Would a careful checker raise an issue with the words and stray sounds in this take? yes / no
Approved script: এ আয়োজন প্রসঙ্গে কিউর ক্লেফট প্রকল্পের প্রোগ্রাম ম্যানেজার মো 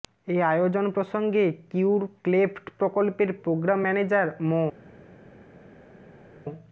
no